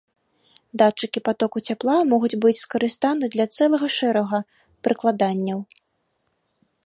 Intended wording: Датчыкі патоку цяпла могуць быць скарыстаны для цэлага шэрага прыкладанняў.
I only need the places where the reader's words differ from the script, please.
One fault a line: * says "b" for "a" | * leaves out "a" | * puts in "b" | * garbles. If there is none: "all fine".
all fine